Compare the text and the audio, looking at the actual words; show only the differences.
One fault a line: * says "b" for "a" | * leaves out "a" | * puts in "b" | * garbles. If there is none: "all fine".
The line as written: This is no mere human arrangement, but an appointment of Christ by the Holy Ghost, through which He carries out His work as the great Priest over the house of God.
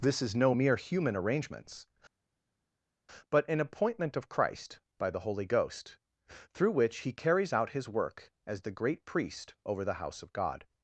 * says "arrangements" for "arrangement"